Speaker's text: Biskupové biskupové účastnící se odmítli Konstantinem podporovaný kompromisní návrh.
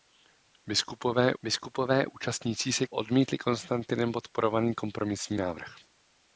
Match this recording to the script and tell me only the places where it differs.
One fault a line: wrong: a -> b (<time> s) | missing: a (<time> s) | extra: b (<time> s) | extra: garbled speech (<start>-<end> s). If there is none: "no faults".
no faults